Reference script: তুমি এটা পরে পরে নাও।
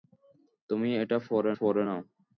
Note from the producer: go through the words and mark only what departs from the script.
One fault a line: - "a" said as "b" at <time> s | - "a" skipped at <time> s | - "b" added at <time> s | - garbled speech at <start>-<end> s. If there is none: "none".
none